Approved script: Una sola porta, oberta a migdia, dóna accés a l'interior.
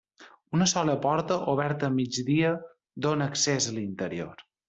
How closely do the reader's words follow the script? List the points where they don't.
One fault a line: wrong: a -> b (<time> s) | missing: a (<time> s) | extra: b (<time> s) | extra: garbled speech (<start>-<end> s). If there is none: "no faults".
no faults